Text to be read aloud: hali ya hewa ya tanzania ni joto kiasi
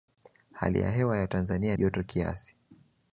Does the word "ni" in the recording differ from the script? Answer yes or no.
yes